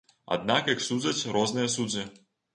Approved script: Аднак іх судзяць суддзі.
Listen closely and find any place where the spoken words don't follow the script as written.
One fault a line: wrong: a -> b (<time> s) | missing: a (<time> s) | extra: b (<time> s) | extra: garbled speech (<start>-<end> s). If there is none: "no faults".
extra: розныя (1.4 s)